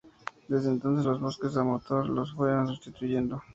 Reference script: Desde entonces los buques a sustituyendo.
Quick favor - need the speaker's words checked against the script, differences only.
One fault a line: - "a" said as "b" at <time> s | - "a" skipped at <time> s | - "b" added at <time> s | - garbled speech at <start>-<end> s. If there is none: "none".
- "motor los fueron" added at 1.7 s